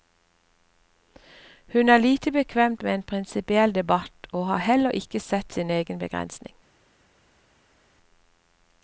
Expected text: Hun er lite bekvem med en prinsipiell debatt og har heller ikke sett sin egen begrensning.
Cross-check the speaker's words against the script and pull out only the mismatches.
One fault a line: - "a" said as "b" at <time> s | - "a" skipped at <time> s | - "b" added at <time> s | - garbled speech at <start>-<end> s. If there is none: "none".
none